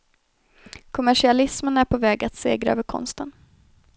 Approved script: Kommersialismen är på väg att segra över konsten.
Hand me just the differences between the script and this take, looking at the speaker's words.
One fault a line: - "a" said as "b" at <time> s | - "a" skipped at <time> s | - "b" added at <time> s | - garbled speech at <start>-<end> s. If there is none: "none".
none